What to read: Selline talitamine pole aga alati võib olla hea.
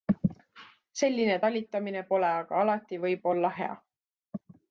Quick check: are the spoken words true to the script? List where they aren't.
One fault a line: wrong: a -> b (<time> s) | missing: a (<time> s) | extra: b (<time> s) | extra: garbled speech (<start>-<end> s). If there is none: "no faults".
no faults